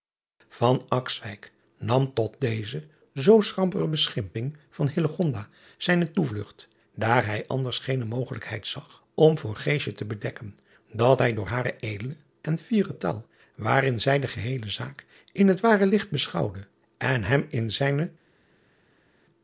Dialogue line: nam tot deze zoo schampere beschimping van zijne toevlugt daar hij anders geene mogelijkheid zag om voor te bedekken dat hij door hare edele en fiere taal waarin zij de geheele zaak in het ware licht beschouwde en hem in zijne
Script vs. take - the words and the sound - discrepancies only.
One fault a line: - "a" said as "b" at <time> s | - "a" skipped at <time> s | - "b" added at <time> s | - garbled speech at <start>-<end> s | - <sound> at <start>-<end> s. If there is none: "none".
none